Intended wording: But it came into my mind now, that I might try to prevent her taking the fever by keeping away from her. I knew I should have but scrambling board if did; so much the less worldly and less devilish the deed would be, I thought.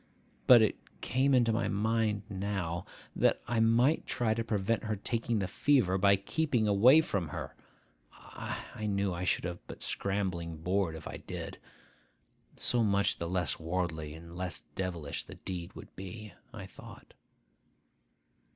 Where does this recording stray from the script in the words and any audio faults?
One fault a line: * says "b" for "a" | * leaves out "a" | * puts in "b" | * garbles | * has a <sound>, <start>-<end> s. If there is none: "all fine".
* puts in "I"